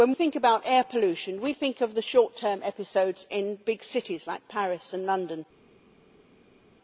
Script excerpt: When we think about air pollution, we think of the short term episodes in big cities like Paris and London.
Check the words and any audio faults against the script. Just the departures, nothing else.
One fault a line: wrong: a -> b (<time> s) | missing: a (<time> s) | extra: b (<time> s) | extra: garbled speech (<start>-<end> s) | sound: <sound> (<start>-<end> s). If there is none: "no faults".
missing: we (0.1 s)